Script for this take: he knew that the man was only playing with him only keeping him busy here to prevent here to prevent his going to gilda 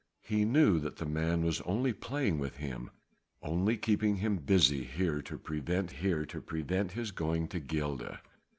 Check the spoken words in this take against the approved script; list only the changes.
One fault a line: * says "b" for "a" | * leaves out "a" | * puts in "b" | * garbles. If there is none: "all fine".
all fine